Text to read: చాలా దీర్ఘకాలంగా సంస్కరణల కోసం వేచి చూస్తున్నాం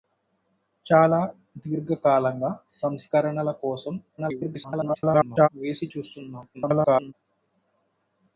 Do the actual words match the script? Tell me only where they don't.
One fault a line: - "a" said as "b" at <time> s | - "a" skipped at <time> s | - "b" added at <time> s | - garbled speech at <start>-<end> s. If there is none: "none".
- garbled speech at 4.2-5.5 s
- garbled speech at 6.5-7.1 s